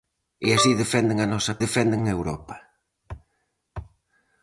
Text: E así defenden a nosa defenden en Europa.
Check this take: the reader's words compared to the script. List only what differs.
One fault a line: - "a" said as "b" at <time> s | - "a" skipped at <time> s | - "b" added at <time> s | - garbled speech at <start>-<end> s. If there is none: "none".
none